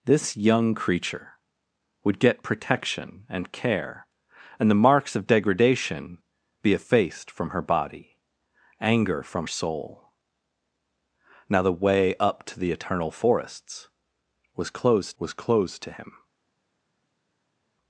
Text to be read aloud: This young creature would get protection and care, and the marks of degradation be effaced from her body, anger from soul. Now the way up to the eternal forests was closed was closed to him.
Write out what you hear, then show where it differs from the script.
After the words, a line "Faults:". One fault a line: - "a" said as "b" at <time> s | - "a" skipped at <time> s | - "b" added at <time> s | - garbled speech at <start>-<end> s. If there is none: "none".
This young creature would get protection and care, and the marks of degradation be effaced from her body, anger from soul. Now the way up to the eternal forests was closed was closed to him.
Faults:
none